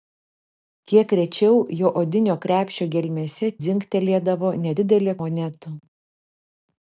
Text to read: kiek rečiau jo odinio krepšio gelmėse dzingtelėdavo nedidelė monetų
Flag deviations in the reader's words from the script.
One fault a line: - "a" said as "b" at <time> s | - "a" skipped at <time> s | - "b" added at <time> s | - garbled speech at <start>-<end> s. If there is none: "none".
none